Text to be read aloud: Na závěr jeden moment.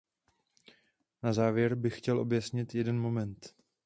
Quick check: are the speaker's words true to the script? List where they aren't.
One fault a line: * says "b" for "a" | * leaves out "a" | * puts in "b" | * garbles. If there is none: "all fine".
* puts in "bych chtěl objasnit"